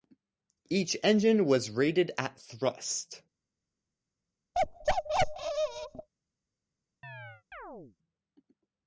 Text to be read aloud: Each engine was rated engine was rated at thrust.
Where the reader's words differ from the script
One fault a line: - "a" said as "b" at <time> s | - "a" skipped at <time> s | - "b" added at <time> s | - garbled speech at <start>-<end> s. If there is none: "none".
- "engine was rated" skipped at 2.1 s